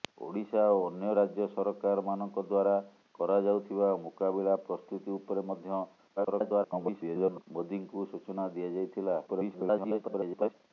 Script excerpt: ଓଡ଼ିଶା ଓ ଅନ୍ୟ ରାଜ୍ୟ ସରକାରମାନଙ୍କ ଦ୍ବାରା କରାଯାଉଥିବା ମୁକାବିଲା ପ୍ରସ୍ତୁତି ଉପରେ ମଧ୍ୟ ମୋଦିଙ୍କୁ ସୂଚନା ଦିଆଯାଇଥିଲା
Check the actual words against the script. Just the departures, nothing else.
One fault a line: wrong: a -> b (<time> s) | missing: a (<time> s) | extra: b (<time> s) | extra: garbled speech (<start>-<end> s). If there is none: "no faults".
extra: garbled speech (6.2-7.4 s)
extra: garbled speech (9.3-10.5 s)